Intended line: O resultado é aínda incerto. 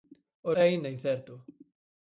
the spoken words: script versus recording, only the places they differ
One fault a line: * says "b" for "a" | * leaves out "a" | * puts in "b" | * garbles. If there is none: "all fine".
* leaves out "resultado"